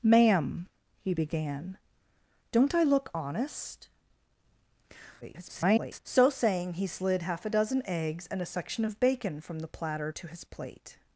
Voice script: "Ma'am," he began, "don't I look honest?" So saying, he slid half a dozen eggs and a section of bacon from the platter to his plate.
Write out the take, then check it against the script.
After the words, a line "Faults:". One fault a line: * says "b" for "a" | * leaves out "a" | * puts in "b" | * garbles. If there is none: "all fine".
"Ma'am," he began, "don't I look honest?" [garbled] So saying, he slid half a dozen eggs and a section of bacon from the platter to his plate.
Faults:
* garbles